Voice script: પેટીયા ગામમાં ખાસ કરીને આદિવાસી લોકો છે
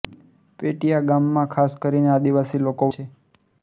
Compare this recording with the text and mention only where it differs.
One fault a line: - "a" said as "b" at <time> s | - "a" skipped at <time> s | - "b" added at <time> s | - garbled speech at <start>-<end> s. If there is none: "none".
none